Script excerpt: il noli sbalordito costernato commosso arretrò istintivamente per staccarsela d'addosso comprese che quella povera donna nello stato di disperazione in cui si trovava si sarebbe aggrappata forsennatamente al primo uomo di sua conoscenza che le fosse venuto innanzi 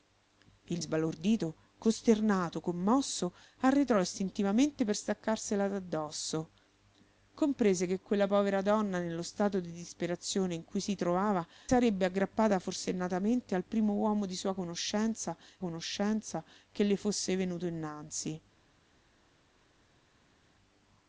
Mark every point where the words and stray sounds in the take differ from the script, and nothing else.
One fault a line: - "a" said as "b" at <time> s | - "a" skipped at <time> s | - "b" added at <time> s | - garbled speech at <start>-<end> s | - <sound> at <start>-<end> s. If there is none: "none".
- "noli" skipped at 0.8 s
- "si" skipped at 11.4 s
- "conoscenza" added at 15.6 s